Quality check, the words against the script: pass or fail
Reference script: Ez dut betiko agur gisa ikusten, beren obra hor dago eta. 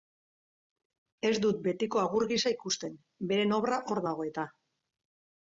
pass